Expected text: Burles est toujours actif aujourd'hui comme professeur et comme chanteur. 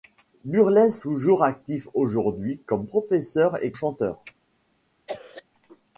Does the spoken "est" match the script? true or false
false